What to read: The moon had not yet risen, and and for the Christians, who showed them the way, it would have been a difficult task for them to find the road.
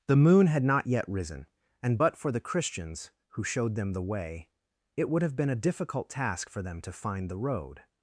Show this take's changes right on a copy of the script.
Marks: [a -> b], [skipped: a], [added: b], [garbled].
The moon had not yet risen, and [and -> but] for the Christians, who showed them the way, it would have been a difficult task for them to find the road.